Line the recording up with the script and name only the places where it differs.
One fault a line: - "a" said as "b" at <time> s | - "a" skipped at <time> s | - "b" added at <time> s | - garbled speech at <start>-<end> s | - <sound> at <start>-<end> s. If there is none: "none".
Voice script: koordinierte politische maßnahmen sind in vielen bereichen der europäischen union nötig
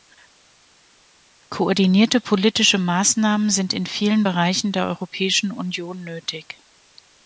none